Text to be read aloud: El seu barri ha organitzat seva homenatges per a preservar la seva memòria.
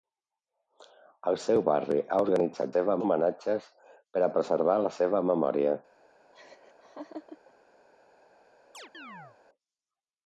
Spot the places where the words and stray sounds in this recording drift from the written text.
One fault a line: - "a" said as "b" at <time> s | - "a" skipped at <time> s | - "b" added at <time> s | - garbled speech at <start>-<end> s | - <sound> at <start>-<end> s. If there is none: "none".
- laugh at 6.3-7.5 s
- chirp at 8.7-9.4 s